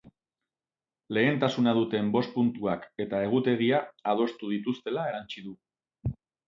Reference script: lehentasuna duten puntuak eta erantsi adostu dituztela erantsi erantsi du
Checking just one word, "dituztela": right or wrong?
right